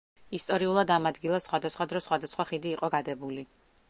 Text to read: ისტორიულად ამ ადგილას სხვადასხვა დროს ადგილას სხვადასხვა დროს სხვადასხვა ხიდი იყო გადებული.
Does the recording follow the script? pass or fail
fail